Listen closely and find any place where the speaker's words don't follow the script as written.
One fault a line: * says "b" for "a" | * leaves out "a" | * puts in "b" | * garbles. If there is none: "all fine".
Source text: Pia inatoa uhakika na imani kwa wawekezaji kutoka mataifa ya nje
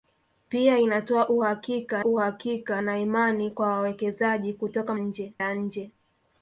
* puts in "uhakika"
* says "nje" for "mataifa"